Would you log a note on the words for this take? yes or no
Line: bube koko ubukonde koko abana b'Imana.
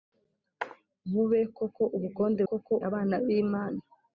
no